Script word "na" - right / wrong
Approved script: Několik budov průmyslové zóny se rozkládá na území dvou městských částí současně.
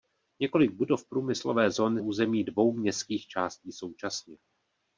wrong